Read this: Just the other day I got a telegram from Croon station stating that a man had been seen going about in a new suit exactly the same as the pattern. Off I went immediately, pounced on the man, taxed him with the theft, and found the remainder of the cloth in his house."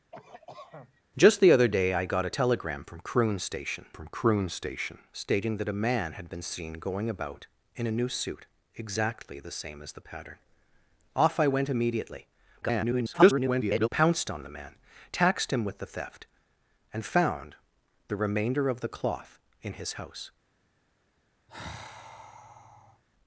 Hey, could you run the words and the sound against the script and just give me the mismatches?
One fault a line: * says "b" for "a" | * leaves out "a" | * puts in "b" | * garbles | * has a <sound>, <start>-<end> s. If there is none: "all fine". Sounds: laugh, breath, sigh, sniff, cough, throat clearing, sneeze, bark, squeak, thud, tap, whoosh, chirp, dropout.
* has a cough, 0.1-1.0 s
* puts in "from Croon station"
* garbles
* has a sigh, 21.5-23.0 s